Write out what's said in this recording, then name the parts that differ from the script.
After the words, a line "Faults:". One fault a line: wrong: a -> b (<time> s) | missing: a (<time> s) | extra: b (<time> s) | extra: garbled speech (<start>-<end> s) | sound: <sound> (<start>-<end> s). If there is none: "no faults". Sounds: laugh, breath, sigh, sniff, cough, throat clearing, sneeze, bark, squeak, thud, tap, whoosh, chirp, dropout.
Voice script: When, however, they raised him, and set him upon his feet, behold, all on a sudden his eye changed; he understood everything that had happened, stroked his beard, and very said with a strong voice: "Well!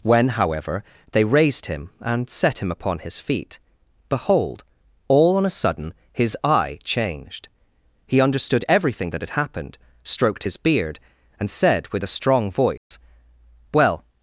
When, however, they raised him, and set him upon his feet, behold, all on a sudden his eye changed; he understood everything that had happened, stroked his beard, and said with a strong voice: "Well!
Faults:
missing: very (11.5 s)
sound: dropout (12.8-12.9 s)